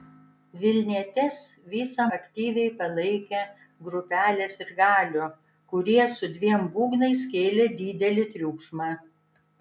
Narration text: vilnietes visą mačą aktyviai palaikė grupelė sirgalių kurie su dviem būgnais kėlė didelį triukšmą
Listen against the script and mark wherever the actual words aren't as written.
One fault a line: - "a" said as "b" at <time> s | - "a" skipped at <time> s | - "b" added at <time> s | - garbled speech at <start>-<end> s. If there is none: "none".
- "mačą" skipped at 2.1 s